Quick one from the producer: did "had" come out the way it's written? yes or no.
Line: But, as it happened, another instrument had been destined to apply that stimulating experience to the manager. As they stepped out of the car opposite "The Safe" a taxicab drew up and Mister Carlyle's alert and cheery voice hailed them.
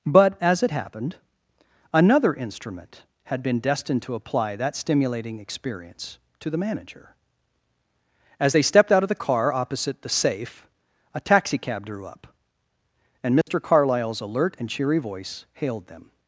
yes